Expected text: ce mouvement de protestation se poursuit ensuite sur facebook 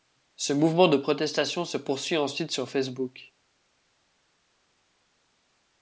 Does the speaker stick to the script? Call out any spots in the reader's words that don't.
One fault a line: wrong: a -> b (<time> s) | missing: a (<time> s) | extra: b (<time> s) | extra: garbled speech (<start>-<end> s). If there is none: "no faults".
no faults